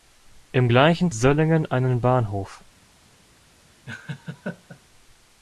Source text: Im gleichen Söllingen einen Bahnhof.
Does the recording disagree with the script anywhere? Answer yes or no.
no